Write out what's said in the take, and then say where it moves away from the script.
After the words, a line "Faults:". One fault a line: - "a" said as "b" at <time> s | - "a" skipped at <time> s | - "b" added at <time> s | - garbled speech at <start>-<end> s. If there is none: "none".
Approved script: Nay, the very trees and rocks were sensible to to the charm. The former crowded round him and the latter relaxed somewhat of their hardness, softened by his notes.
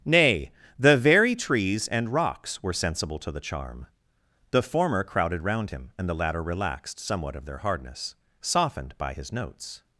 Nay, the very trees and rocks were sensible to the charm. The former crowded round him and the latter relaxed somewhat of their hardness, softened by his notes.
Faults:
- "to" skipped at 3.3 s